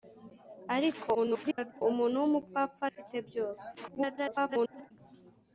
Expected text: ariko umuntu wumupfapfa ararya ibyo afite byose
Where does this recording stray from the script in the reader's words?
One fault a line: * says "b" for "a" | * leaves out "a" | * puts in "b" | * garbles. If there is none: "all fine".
* garbles
* leaves out "ararya ibyo"
* garbles